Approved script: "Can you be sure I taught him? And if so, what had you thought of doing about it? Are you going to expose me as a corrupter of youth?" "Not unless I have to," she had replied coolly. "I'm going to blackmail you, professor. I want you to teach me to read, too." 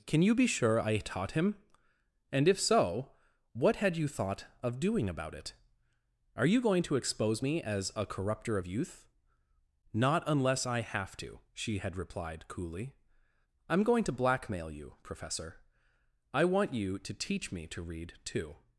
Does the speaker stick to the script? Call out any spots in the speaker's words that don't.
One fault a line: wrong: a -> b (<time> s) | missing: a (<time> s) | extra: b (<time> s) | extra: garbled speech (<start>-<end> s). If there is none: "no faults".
no faults